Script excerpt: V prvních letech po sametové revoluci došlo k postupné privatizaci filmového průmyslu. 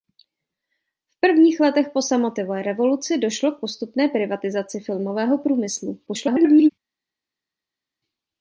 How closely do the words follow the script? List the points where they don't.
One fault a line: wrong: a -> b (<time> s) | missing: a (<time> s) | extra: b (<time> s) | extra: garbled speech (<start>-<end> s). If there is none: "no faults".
extra: garbled speech (6.1-6.7 s)